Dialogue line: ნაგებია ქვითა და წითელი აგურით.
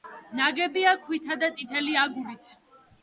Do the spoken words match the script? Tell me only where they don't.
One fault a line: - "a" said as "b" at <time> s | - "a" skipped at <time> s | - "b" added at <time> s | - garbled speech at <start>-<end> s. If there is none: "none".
none